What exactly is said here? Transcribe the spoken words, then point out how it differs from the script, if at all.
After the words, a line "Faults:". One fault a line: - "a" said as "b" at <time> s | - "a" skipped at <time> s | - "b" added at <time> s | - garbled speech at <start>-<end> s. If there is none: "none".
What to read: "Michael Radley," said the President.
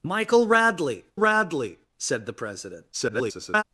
"Michael Radley Radley," said the President. [garbled]
Faults:
- "Radley" added at 1.2 s
- garbled speech at 2.9-3.6 s